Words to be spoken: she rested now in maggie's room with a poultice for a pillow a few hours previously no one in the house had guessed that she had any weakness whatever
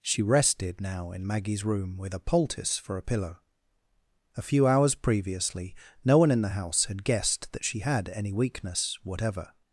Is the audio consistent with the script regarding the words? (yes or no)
yes